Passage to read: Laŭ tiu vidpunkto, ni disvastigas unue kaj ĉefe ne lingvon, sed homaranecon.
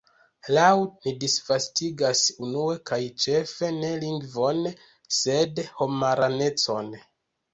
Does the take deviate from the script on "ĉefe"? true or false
false